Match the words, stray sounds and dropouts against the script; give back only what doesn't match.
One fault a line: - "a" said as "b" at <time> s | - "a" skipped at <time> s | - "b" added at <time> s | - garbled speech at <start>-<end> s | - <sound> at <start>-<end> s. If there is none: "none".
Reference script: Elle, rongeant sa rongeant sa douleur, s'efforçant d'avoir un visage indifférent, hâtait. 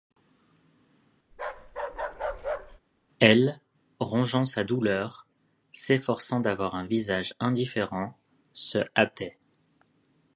- bark at 1.3-2.8 s
- "rongeant sa" skipped at 4.6 s
- "se" added at 8.5 s